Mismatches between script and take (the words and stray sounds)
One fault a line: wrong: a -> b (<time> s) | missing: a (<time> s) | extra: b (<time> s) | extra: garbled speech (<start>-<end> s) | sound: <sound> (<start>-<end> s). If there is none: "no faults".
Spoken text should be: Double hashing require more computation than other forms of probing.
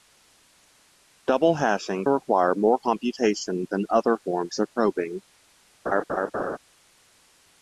sound: laugh (5.9-6.6 s)